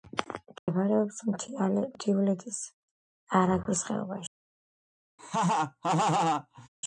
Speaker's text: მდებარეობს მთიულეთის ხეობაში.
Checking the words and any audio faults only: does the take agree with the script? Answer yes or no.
no